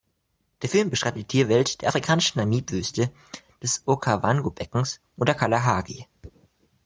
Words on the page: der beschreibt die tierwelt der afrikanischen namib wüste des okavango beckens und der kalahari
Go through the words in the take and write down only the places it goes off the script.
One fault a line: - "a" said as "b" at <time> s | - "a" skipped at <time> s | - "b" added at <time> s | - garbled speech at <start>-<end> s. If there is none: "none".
- "film" added at 0.7 s